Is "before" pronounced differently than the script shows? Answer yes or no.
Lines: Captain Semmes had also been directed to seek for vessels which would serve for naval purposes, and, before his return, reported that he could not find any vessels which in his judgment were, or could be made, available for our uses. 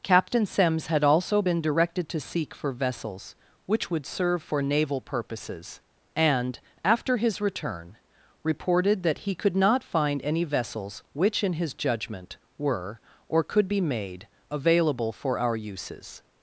yes